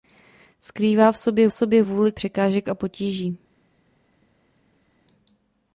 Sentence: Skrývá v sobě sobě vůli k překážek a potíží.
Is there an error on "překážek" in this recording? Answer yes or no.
no